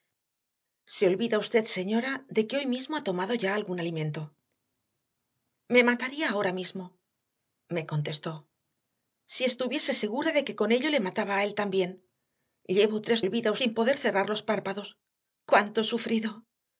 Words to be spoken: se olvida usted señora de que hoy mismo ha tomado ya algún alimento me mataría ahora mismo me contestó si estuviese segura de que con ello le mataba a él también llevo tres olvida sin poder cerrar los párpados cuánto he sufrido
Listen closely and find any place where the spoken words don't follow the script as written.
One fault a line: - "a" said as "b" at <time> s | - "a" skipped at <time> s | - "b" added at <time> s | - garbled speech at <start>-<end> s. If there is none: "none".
none